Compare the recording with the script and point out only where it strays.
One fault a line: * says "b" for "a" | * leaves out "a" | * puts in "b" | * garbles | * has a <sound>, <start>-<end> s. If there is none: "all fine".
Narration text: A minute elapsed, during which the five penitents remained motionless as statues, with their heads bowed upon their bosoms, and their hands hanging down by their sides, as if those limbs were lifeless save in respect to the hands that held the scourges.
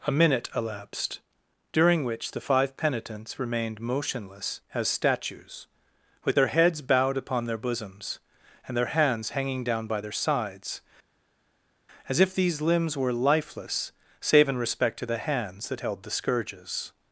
* says "these" for "those"